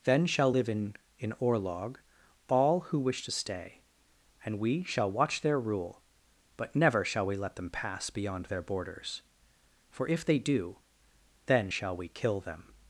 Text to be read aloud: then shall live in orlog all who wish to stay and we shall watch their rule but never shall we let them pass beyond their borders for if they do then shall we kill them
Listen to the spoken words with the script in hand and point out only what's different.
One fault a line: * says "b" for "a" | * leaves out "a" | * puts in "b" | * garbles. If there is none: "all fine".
* puts in "in"